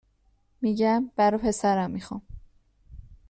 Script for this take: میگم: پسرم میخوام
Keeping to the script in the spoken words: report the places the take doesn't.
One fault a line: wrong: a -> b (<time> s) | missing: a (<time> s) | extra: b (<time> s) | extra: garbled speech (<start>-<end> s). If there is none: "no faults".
extra: برا (1.1 s)